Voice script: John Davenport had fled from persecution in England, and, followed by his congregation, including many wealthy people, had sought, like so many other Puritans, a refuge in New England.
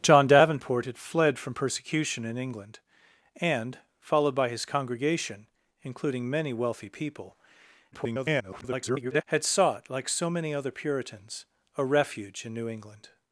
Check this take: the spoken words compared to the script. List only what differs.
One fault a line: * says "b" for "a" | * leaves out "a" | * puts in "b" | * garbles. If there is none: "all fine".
* garbles